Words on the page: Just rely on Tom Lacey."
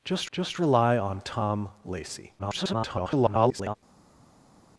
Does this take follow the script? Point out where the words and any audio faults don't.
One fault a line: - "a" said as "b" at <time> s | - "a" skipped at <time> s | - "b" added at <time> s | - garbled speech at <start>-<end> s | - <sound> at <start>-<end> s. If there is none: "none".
- "just" added at 0.3 s
- garbled speech at 2.4-3.8 s